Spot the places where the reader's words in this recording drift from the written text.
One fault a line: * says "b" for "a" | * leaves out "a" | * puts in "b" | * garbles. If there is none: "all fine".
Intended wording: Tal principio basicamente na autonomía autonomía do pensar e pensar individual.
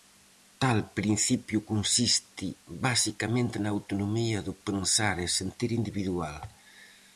* puts in "consiste"
* leaves out "autonomía"
* says "sentir" for "pensar"